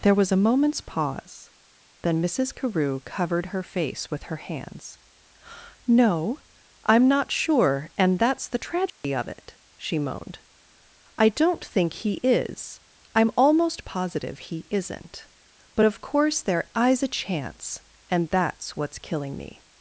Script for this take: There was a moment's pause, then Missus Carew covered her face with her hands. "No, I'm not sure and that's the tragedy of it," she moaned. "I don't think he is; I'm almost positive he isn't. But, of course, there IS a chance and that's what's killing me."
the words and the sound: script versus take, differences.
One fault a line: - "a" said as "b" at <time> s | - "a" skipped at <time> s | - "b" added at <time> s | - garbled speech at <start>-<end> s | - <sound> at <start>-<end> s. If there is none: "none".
- dropout at 8.9-9.0 s